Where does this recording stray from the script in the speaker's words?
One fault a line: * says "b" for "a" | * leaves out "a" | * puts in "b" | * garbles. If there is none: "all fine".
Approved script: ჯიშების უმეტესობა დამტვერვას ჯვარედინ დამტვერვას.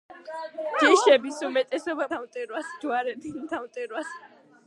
all fine